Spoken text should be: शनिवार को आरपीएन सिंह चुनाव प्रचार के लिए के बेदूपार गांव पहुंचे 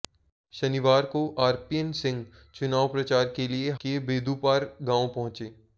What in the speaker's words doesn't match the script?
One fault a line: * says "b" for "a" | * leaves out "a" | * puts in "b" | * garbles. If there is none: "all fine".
all fine